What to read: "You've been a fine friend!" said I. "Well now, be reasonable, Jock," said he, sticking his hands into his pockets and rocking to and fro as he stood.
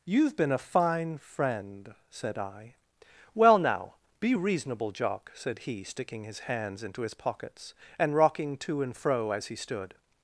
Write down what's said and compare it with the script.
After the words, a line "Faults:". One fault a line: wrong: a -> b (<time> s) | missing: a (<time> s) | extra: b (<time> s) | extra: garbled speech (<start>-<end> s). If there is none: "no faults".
"You've been a fine friend!" said I. "Well now, be reasonable, Jock," said he, sticking his hands into his pockets and rocking to and fro as he stood.
Faults:
no faults